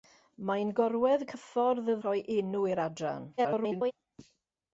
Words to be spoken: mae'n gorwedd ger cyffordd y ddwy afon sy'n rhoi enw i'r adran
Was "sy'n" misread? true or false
true